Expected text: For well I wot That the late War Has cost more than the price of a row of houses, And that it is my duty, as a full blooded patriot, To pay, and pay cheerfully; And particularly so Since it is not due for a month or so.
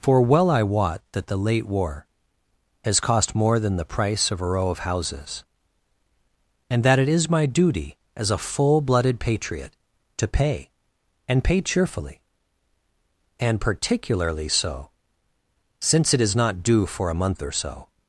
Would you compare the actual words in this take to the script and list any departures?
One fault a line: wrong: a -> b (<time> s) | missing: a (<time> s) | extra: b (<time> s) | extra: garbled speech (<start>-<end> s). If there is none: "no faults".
no faults